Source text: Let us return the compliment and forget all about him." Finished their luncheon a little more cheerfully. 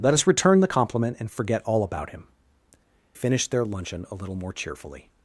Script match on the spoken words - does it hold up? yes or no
yes